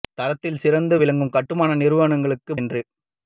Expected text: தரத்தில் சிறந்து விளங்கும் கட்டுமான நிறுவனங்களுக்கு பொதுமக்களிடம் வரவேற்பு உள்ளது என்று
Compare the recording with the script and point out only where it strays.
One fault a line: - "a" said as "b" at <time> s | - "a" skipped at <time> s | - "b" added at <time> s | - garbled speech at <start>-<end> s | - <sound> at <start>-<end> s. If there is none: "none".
- "பொதுமக்களிடம் வரவேற்பு உள்ளது" skipped at 2.5 s